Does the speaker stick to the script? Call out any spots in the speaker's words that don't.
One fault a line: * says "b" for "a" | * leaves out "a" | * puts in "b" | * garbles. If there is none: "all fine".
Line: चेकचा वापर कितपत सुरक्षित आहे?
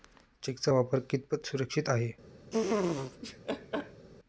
all fine